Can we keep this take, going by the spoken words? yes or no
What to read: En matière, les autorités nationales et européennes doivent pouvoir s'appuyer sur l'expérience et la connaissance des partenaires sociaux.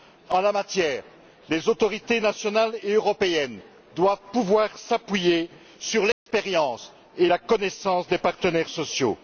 no